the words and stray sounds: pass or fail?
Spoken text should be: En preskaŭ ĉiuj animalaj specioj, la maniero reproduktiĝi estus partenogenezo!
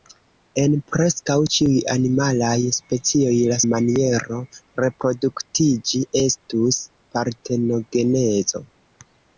pass